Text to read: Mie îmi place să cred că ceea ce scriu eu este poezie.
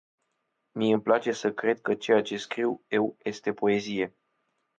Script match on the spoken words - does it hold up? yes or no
yes